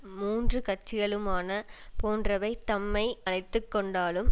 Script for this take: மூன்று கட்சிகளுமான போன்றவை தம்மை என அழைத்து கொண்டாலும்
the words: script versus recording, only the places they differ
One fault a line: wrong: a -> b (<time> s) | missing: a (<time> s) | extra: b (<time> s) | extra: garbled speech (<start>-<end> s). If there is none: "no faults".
missing: என (3.0 s)